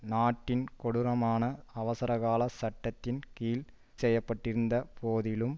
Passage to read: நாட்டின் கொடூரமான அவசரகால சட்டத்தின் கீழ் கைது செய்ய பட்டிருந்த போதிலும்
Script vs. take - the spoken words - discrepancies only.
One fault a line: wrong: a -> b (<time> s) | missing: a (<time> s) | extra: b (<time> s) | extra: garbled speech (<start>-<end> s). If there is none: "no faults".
missing: கைது (3.6 s)